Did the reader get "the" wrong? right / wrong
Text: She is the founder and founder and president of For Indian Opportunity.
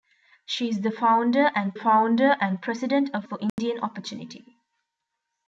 right